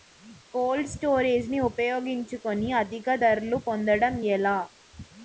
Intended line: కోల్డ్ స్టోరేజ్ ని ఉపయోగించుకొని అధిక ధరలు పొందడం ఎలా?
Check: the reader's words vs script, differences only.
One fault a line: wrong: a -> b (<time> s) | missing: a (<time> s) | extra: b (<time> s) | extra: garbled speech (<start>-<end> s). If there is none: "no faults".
no faults